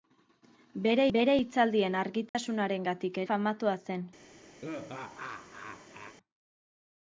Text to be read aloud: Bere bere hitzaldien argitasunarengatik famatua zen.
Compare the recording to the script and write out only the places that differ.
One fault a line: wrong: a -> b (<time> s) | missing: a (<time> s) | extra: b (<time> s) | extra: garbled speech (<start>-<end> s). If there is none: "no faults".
no faults